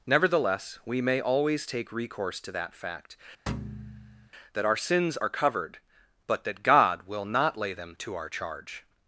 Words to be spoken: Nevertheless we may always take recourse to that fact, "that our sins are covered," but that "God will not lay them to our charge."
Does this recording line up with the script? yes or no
yes